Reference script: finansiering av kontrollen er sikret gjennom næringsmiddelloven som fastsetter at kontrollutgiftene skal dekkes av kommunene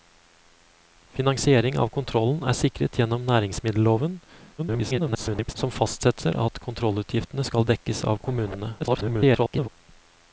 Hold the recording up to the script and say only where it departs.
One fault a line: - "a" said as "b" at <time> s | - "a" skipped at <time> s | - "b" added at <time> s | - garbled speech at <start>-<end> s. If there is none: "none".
- garbled speech at 4.6-5.5 s
- garbled speech at 8.8-9.7 s